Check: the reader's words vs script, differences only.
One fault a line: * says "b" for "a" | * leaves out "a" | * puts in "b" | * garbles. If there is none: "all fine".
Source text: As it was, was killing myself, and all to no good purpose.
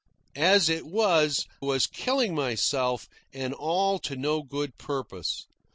all fine